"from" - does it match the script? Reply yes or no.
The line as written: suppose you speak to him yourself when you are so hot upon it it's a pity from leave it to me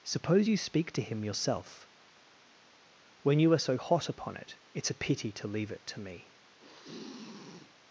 no